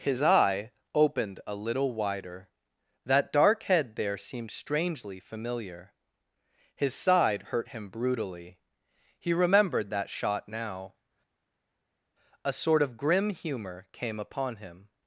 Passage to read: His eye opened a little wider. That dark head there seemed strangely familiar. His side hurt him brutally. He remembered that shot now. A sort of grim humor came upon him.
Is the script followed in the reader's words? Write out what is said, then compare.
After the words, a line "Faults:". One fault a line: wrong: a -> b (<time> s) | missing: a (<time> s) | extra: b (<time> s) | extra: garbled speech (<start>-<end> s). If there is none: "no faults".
His eye opened a little wider. That dark head there seemed strangely familiar. His side hurt him brutally. He remembered that shot now. A sort of grim humor came upon him.
Faults:
no faults